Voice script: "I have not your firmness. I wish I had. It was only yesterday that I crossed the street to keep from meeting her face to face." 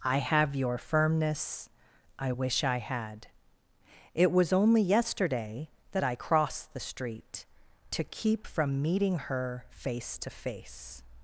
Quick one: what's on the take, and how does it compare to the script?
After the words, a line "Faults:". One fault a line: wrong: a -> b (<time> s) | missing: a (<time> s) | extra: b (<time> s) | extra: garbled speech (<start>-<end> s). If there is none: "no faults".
"I have your firmness. I wish I had. It was only yesterday that I crossed the street to keep from meeting her face to face."
Faults:
missing: not (0.6 s)